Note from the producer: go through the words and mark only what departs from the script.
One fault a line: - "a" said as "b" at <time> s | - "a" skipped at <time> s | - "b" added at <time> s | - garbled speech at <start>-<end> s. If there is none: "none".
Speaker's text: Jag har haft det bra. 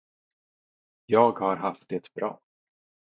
none